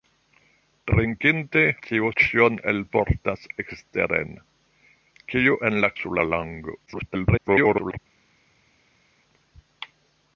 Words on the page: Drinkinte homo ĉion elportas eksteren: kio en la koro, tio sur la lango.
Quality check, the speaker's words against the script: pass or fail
fail